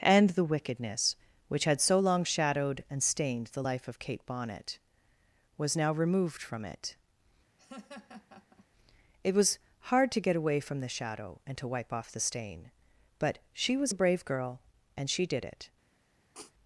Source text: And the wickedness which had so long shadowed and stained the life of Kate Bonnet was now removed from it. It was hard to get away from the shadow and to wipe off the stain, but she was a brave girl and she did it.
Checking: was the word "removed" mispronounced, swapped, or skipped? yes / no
no